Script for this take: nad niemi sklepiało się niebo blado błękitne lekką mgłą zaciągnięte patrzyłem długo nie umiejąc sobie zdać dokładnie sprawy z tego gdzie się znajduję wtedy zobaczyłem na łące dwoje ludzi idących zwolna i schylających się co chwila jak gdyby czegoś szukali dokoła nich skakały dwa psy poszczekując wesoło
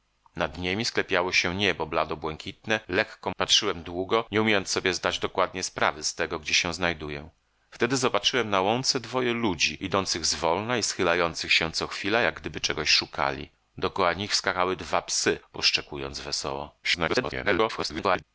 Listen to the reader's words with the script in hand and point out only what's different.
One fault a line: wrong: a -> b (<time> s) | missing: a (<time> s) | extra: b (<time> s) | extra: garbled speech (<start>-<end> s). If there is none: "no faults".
missing: mgłą zaciągnięte (3.3 s)
extra: garbled speech (16.8-18.2 s)